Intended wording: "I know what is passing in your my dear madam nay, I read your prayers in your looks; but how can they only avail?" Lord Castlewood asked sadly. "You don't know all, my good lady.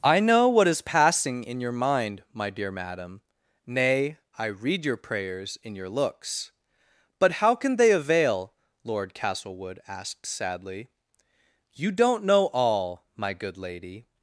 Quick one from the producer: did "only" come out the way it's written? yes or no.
no